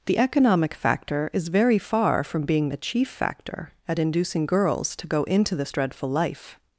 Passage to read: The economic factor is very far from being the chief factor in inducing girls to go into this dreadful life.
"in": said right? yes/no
no